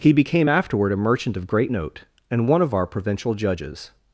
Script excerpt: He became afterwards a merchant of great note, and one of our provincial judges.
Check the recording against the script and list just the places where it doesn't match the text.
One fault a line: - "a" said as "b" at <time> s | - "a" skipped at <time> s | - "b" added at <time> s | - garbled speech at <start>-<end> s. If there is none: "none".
- "afterwards" said as "afterward" at 0.5 s